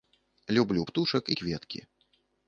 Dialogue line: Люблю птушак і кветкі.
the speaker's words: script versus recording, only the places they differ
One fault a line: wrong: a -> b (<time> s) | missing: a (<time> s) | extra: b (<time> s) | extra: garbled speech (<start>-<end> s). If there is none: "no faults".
no faults